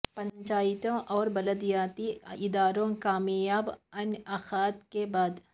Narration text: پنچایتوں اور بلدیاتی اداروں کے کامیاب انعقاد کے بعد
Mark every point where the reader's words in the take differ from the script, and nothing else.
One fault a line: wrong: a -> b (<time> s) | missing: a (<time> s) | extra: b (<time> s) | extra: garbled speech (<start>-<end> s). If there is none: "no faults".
missing: کے (2.9 s)